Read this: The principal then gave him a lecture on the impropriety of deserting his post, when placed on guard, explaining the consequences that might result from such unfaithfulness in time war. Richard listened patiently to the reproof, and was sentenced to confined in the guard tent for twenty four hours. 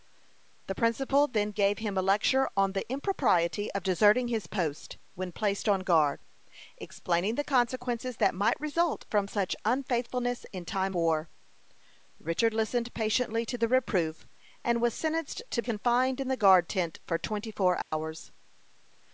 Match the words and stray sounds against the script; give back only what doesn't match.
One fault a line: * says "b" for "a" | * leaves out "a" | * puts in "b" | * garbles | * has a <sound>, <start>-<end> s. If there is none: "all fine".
* has a dropout, 17.8-17.9 s